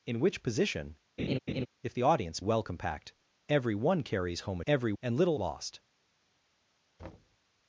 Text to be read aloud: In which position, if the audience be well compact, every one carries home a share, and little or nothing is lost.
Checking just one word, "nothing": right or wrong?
wrong